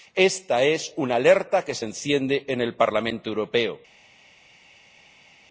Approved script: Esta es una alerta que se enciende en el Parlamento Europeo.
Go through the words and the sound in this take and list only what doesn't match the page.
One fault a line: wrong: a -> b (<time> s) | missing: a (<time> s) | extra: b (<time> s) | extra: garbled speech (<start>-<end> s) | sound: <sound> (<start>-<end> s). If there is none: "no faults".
no faults